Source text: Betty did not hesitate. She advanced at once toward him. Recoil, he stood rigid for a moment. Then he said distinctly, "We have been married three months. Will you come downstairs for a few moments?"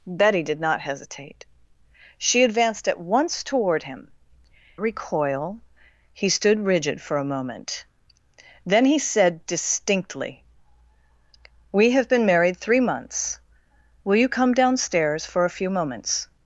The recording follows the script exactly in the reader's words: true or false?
true